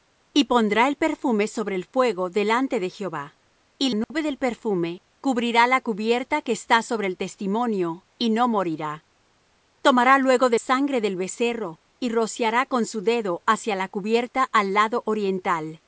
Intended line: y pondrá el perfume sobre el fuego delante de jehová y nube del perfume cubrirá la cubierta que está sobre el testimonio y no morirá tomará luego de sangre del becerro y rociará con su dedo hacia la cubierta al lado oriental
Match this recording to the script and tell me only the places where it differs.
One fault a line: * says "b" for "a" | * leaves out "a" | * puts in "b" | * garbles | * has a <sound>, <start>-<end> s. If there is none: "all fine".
* has a dropout, 4.0-4.1 s